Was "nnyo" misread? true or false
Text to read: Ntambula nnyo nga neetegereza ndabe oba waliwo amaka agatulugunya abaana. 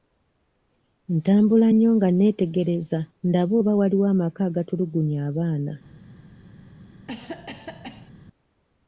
false